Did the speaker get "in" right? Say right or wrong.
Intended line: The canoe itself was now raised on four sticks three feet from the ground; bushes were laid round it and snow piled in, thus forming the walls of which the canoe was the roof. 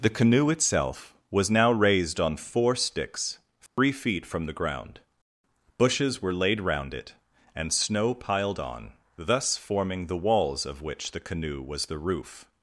wrong